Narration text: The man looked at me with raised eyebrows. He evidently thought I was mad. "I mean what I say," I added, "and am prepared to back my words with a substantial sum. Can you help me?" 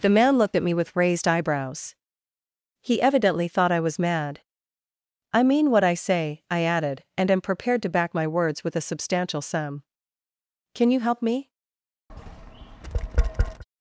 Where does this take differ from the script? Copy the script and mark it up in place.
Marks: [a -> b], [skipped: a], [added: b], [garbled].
The man looked at me with raised eyebrows. He evidently thought I was mad. "I mean what I say," I added, "and am prepared to back my words with a substantial sum. Can you help me?"